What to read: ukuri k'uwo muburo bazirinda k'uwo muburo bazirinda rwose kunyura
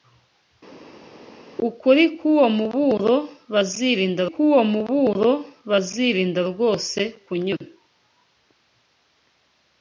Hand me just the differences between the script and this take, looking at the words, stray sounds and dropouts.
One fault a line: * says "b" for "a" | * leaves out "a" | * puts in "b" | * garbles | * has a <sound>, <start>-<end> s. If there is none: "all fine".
all fine